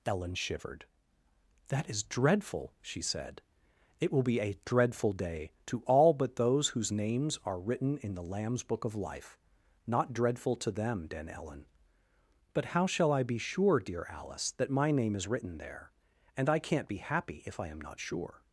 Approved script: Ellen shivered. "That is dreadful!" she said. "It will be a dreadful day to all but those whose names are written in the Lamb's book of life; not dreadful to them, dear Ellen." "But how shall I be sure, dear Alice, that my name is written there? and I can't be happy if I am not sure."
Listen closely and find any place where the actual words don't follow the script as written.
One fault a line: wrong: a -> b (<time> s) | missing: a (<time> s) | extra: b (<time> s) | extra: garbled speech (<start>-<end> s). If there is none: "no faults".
wrong: dear -> den (11.1 s)